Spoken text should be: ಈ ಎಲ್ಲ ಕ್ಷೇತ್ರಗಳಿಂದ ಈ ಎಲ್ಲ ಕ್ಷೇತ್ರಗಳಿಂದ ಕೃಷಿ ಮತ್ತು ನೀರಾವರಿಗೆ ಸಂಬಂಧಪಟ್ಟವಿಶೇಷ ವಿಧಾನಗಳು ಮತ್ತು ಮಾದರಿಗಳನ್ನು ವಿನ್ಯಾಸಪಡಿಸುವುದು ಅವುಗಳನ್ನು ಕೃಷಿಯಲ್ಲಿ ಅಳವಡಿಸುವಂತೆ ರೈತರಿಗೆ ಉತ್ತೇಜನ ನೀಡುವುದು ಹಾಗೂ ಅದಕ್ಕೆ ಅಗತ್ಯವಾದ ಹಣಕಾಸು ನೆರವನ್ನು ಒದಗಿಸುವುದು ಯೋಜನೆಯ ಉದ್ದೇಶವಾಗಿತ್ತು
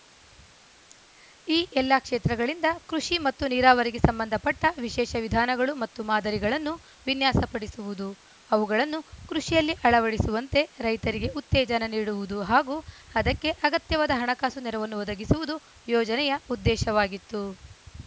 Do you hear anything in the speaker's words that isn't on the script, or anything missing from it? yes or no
yes